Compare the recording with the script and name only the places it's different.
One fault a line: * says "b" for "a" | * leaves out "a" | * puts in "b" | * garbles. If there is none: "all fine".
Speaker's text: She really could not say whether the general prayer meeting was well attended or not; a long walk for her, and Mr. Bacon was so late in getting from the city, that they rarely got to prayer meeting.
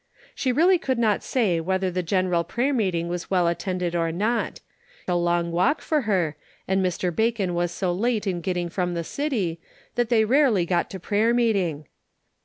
all fine